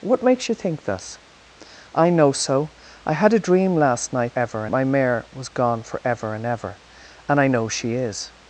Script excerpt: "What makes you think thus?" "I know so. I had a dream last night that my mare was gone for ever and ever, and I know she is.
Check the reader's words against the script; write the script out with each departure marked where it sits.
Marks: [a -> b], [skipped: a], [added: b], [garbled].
"What makes you think thus?" "I know so. I had a dream last night [that -> ever] my mare was gone for ever and ever, and I know she is.